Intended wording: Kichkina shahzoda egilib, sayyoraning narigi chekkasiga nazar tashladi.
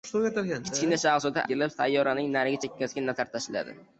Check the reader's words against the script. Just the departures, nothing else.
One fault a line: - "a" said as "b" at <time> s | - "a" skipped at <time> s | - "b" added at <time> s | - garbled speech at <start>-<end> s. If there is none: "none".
none